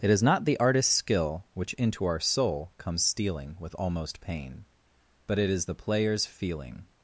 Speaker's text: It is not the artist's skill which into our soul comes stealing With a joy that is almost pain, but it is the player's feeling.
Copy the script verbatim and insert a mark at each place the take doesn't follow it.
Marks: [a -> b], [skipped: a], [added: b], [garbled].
It is not the artist's skill which into our soul comes stealing With [skipped: a joy that is] almost pain, but it is the player's feeling.